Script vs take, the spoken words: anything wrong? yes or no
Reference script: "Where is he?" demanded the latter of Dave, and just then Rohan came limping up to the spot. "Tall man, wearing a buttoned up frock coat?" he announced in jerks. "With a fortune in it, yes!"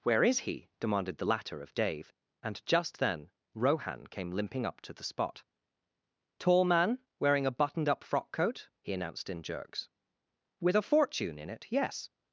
no